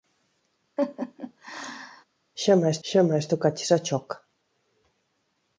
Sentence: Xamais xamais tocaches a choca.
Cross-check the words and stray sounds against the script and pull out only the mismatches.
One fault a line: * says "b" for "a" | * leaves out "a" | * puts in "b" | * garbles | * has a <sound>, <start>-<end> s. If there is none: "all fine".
* has a laugh, 0.8-2.0 s